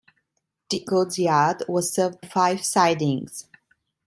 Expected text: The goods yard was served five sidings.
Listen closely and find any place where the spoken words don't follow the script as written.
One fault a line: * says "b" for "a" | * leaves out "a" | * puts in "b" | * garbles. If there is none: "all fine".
all fine